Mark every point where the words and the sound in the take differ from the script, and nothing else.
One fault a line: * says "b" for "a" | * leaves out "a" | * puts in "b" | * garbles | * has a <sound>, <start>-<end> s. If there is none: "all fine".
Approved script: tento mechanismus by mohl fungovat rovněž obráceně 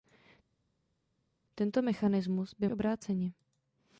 * leaves out "mohl fungovat rovněž"